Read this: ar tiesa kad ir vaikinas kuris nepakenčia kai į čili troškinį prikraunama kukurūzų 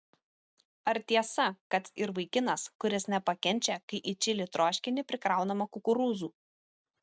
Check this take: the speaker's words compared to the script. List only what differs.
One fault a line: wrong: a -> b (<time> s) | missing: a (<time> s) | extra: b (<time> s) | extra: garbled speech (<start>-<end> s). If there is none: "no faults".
no faults